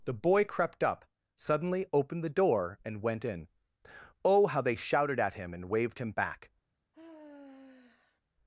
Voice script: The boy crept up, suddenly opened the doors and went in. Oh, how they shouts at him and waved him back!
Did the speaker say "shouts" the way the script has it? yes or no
no